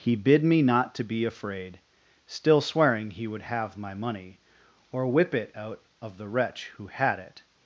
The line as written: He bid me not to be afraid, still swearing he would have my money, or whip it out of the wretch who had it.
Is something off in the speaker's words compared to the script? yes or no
no